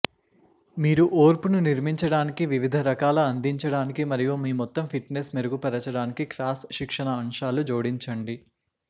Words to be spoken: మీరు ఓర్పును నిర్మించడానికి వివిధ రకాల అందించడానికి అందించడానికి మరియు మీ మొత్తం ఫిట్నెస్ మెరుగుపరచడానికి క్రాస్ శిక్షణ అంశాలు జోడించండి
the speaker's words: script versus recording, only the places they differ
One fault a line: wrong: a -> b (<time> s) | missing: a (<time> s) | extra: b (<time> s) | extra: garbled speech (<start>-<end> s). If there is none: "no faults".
missing: అందించడానికి (4.0 s)